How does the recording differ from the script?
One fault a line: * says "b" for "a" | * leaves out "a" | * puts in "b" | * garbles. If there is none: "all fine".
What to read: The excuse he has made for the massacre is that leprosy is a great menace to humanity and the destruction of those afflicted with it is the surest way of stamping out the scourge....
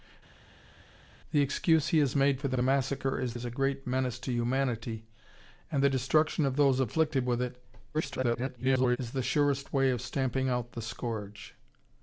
* puts in "the"
* leaves out "that leprosy"
* garbles